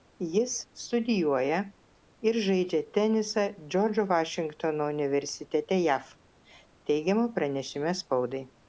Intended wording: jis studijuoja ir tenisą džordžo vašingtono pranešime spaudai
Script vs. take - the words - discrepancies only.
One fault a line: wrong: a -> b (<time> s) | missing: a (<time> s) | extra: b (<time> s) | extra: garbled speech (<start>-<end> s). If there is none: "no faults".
extra: žaidžia (2.5 s)
extra: universitete jav teigiama (4.9 s)